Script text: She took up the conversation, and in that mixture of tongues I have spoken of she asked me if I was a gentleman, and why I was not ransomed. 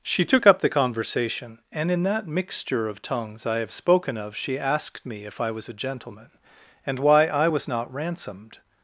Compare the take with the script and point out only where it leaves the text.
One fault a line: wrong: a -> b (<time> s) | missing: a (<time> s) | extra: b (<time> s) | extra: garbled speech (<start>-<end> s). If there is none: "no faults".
no faults